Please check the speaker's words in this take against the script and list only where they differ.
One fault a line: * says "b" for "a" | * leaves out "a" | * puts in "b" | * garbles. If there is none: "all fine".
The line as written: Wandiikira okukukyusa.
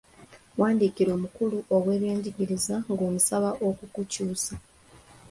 * puts in "omukulu w'ebyenjigiriza ng'omusaba"